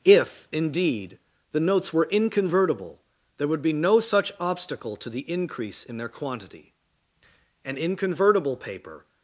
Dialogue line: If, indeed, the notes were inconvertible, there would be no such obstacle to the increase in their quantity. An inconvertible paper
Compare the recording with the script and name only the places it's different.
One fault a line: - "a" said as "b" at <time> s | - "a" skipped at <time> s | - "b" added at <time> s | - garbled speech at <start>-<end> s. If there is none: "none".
none